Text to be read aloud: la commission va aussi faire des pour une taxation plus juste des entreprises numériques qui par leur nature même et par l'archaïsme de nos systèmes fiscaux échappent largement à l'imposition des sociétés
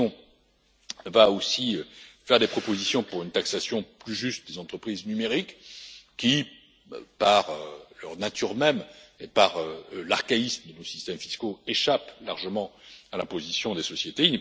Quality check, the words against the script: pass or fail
fail